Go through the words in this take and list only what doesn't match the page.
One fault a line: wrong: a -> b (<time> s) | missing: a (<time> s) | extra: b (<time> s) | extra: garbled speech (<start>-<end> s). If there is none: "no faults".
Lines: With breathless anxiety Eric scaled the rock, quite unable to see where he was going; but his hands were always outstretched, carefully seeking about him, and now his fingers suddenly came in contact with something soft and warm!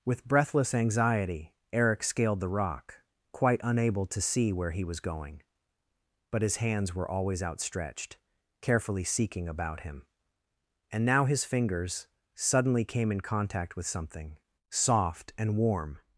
no faults